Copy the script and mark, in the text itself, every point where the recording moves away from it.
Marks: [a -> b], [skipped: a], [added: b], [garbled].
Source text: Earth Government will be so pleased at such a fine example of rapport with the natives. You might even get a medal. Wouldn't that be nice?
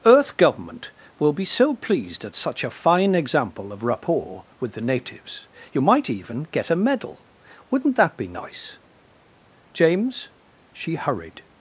Earth Government will be so pleased at such a fine example of rapport with the natives. You might even get a medal. Wouldn't that be nice? [added: James she hurried]